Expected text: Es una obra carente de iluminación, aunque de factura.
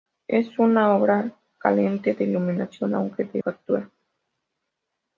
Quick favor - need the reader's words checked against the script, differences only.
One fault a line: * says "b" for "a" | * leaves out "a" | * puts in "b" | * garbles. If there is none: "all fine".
all fine